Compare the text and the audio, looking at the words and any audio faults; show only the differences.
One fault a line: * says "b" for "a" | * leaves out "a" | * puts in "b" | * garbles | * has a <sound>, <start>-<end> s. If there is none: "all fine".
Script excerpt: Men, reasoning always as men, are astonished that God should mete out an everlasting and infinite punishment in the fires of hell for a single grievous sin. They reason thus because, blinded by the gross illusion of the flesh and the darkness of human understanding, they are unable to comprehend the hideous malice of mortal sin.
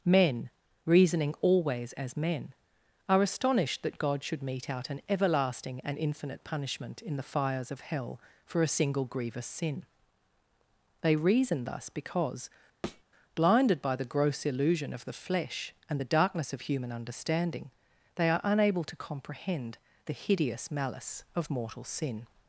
* has a thud, 12.8-13.0 s